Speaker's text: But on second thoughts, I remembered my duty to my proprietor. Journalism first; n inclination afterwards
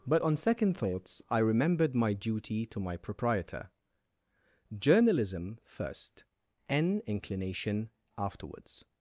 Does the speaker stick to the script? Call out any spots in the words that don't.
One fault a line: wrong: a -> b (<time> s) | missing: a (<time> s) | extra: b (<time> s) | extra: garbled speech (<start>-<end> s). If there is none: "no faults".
no faults